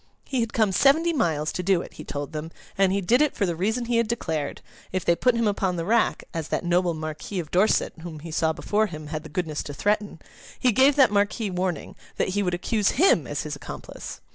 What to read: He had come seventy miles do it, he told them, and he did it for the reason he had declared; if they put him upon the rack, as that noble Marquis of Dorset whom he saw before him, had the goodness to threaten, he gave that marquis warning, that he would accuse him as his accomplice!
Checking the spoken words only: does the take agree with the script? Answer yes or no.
no